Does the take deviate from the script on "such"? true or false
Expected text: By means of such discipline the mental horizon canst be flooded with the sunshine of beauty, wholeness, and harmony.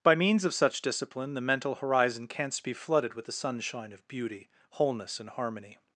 false